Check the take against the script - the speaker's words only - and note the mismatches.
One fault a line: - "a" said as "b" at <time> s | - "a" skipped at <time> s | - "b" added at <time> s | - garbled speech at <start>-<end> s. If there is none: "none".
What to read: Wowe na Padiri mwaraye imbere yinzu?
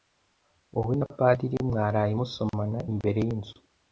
- "musomana" added at 2.2 s